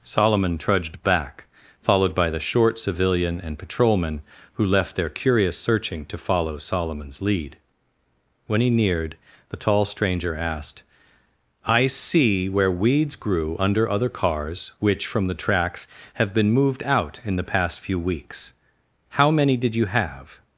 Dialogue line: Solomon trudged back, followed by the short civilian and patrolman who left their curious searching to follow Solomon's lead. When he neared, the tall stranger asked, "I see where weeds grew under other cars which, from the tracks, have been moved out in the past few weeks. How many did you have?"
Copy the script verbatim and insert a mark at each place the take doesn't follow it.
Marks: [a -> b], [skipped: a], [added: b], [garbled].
Solomon trudged back, followed by the short civilian and patrolman who left their curious searching to follow Solomon's lead. When he neared, the tall stranger asked, "I see where weeds grew under other cars which, from the tracks, have been moved out in the past few weeks. How many did you have?"